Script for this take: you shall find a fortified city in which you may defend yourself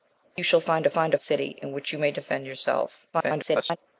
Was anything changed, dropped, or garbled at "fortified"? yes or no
yes